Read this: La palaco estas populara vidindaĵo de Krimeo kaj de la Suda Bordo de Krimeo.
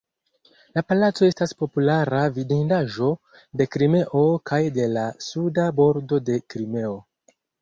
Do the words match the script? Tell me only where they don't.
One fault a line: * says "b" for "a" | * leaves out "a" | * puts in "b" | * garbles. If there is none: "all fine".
all fine